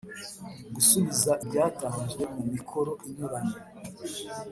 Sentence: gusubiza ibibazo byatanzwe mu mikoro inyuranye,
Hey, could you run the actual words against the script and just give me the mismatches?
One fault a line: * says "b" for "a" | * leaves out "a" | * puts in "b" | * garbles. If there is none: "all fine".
* leaves out "ibibazo"